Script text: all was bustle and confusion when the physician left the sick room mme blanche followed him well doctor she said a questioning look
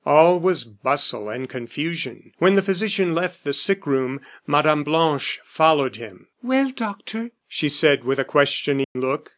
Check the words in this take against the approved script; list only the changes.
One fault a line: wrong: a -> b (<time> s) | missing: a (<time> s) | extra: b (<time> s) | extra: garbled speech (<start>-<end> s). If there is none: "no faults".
extra: with (8.0 s)